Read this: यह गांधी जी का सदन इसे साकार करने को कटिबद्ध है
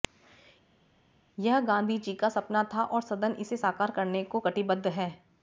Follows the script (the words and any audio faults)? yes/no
no